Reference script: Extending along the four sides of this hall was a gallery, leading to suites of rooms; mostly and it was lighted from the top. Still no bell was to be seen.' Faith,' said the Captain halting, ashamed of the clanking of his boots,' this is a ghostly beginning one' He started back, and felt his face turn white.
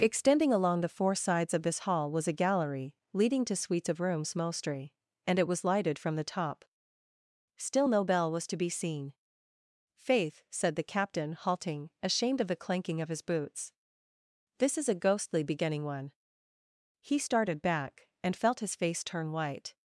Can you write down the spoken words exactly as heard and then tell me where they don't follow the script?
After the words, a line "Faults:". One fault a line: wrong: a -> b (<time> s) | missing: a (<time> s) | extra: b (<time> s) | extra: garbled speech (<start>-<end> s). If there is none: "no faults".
Extending along the four sides of this hall was a gallery, leading to suites of rooms; mostly and it was lighted from the top. Still no bell was to be seen.' Faith,' said the Captain halting, ashamed of the clanking of his boots,' this is a ghostly beginning one' He started back, and felt his face turn white.
Faults:
no faults